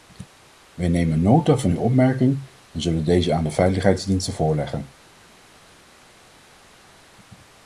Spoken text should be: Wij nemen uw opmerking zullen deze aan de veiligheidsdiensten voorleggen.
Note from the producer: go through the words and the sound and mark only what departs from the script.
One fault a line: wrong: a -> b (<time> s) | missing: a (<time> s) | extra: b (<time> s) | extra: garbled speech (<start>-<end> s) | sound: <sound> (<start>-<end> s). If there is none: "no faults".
extra: nota van (1.2 s)
extra: en (2.7 s)